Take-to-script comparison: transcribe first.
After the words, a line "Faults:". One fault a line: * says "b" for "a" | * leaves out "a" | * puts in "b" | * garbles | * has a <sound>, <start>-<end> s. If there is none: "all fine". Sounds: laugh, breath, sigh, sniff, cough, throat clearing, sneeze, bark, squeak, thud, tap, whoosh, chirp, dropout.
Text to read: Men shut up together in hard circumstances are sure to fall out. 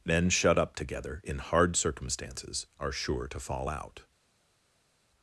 Men shut up together in hard circumstances are sure to fall out.
Faults:
all fine